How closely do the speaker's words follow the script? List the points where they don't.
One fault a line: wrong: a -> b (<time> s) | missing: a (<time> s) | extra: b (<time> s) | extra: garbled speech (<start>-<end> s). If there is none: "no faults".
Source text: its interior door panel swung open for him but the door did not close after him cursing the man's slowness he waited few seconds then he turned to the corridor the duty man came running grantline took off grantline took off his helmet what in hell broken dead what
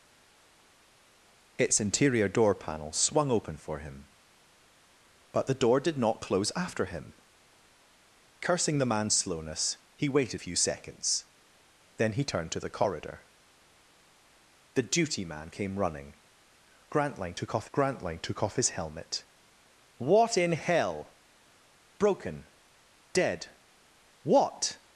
no faults